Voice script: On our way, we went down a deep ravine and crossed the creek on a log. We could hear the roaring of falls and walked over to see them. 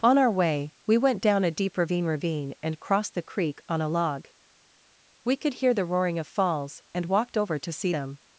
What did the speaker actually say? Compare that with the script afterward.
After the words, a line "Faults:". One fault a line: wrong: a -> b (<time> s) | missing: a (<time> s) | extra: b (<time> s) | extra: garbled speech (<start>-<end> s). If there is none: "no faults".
On our way, we went down a deep ravine ravine and crossed the creek on a log. We could hear the roaring of falls and walked over to see them.
Faults:
extra: ravine (2.0 s)